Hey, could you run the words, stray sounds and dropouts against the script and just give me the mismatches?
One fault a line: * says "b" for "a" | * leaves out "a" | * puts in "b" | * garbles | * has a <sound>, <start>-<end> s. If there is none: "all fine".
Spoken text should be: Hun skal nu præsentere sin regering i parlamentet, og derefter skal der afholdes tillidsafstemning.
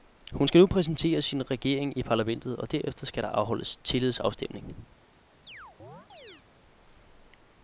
* has a chirp, 5.5-6.4 s